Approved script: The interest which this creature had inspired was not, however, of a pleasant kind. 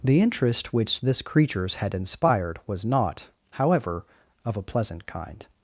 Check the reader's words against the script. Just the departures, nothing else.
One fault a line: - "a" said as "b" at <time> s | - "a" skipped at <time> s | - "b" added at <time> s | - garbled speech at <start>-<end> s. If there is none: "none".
- "creature" said as "creatures" at 1.2 s